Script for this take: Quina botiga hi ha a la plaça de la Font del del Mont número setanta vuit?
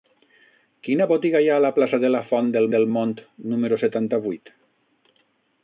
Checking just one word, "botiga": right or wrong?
right